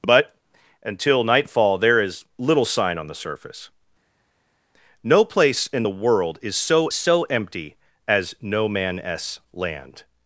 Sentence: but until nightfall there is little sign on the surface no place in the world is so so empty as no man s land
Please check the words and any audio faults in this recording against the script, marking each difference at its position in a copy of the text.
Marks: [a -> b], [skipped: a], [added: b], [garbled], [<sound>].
but until nightfall there is little sign on the surface no place in the world is so so empty as no man s land